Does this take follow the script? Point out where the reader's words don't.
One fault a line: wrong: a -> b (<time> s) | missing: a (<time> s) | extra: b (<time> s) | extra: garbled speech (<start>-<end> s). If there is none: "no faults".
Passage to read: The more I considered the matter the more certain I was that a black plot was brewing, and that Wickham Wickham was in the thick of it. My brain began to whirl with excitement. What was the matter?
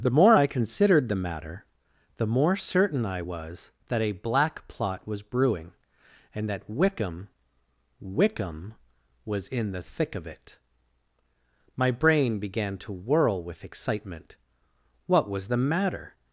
no faults